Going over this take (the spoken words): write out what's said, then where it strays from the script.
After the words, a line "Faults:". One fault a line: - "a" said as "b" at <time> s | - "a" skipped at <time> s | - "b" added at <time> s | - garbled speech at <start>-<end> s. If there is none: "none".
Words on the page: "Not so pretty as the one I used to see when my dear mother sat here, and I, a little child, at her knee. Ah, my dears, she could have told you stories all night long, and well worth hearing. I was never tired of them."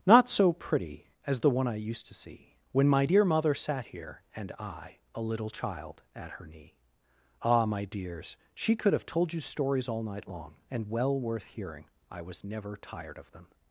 "Not so pretty as the one I used to see when my dear mother sat here, and I, a little child, at her knee. Ah, my dears, she could have told you stories all night long, and well worth hearing. I was never tired of them."
Faults:
none